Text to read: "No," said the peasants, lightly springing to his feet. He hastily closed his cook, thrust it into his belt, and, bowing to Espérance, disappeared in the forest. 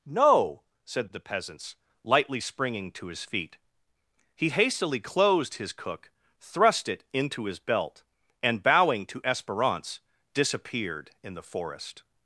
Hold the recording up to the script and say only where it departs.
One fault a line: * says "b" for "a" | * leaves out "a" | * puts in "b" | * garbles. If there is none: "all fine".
all fine